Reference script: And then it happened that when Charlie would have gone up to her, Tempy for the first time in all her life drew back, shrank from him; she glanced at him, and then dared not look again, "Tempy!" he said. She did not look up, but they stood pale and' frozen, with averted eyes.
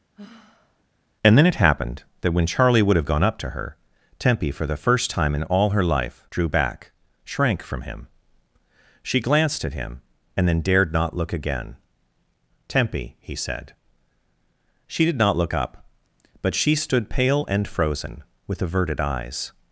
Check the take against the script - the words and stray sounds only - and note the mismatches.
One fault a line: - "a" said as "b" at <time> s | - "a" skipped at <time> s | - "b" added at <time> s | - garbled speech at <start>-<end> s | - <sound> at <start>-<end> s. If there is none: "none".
- sigh at 0.2-0.8 s
- "they" said as "she" at 16.6 s